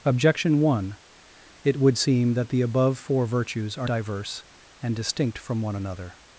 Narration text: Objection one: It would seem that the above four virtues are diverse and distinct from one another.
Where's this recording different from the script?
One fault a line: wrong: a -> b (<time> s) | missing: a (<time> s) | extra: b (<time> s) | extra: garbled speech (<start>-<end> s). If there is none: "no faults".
no faults